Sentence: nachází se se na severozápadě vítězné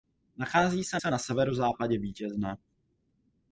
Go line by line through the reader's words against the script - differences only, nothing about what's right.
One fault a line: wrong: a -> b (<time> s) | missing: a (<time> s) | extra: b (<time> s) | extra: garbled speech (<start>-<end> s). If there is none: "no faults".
no faults